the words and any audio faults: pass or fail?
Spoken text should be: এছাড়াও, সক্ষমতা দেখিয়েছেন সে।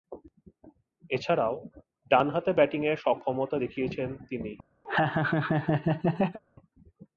fail